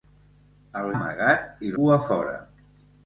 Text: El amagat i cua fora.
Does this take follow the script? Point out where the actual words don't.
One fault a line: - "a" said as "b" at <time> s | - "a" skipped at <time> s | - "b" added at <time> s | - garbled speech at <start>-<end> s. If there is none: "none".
none